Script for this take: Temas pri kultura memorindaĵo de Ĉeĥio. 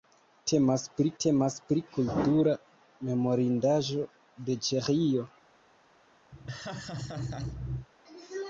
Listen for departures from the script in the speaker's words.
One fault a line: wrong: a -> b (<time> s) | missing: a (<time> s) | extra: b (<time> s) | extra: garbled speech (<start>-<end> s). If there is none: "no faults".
extra: temas pri (1.2 s)